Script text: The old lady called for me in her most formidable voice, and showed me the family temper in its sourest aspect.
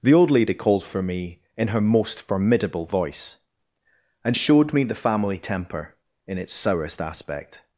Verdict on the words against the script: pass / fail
pass